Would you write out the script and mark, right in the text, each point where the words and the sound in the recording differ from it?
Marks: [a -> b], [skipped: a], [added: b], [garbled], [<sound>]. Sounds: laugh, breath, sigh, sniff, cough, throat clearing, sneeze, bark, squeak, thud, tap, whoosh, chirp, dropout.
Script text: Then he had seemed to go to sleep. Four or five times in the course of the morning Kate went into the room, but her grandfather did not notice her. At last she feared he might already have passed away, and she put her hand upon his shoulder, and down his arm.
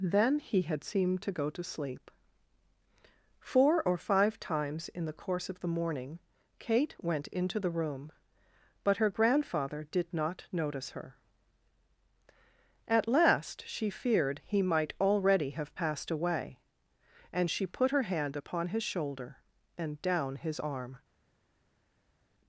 Then he had seemed to go to sleep. Four or five times in the course of the morning Kate went into the room, but her grandfather did not notice her. At last she feared he might already have passed away, and she put her hand upon his shoulder, and down his arm.